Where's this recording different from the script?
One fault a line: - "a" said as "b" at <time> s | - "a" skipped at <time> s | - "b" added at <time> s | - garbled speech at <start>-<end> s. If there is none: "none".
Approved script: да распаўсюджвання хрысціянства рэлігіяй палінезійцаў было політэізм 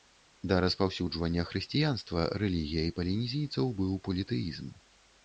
- "было" said as "быў" at 3.8 s